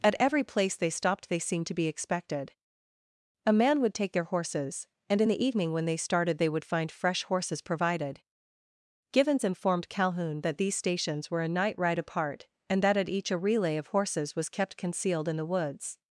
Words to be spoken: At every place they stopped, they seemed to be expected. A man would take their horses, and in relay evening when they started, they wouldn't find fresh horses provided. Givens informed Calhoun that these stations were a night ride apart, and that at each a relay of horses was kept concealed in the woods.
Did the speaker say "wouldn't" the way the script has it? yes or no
no